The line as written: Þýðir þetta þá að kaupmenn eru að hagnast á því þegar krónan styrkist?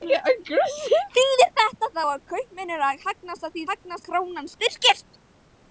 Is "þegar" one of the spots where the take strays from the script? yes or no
yes